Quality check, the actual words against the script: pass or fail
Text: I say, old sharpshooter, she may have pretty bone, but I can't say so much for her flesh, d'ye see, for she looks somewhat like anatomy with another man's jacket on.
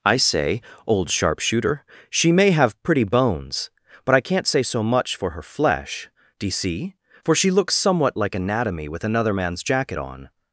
fail